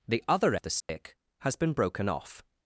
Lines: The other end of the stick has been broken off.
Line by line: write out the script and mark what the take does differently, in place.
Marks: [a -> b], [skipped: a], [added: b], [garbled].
The other [skipped: end] of the stick has been broken off.